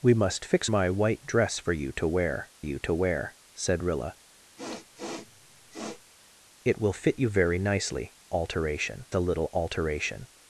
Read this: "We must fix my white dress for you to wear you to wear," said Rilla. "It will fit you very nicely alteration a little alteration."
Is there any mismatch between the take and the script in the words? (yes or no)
no